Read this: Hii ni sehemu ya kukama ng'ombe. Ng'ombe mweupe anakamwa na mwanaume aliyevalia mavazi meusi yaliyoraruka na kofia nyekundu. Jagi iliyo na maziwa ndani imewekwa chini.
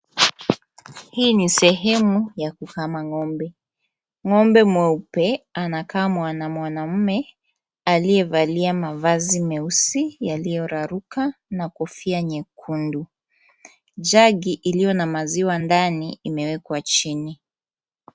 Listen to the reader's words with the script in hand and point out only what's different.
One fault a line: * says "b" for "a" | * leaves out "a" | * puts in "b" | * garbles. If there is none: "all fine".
all fine